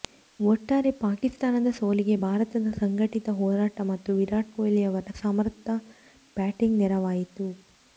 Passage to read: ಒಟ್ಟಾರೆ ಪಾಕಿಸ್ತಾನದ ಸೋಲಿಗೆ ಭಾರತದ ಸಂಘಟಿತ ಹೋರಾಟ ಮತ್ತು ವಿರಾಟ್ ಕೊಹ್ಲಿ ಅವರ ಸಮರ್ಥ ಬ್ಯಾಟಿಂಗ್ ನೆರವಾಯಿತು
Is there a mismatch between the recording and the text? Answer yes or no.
no